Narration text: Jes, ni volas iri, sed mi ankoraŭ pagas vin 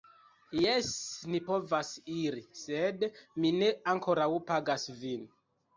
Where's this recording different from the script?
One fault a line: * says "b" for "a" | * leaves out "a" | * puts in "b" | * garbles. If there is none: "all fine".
* says "povas" for "volas"
* puts in "ne"